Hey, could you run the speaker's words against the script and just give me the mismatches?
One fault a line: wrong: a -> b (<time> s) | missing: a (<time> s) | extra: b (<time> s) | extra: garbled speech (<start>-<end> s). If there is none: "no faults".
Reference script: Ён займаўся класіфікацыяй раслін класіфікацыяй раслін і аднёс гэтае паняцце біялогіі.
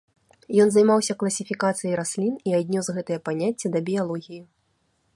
missing: класіфікацыяй раслін (2.3 s)
extra: да (3.7 s)